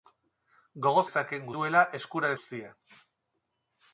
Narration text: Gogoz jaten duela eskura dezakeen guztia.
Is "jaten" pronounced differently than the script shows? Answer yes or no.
yes